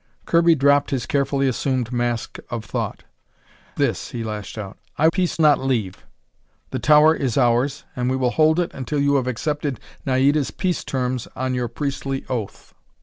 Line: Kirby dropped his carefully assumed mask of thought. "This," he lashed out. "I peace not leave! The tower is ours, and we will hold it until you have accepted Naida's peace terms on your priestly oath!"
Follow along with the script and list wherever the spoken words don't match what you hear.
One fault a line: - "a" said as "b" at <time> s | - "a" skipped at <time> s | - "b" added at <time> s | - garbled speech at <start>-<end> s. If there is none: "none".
none